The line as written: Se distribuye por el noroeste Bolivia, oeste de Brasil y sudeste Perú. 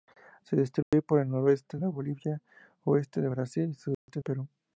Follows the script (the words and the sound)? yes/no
no